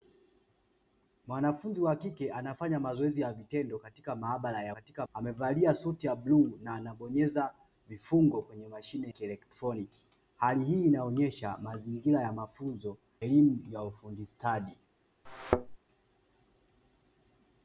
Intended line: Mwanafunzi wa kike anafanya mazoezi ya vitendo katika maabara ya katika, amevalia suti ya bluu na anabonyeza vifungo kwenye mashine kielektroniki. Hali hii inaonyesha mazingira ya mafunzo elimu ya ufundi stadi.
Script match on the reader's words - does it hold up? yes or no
yes